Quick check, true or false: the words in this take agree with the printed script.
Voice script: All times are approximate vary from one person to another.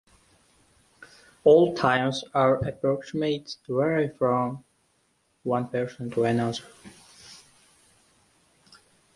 true